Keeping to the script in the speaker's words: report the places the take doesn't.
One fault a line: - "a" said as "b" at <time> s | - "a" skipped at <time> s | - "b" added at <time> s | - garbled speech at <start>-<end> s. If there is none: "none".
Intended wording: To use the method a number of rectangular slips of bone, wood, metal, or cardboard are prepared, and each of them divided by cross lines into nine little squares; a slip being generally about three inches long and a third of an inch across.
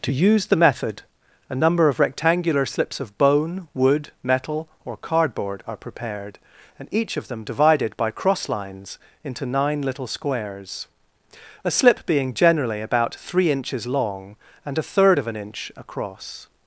none